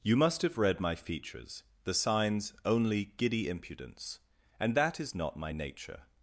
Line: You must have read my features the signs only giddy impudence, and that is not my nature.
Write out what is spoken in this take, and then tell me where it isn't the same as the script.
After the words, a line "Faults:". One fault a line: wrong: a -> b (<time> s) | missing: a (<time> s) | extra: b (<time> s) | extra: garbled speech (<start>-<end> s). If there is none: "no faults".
You must have read my features the signs only giddy impudence, and that is not my nature.
Faults:
no faults